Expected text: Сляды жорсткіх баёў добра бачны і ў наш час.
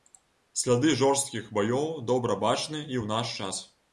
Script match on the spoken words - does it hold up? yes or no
yes